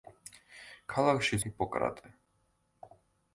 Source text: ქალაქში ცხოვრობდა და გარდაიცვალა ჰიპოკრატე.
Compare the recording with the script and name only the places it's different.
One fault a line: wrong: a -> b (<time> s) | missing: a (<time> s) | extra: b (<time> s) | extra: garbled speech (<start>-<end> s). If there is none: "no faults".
missing: ცხოვრობდა და გარდაიცვალა (1.4 s)